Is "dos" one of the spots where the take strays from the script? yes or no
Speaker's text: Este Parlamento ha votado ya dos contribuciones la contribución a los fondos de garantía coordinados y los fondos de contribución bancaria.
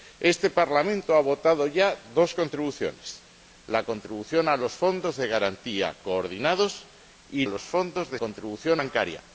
no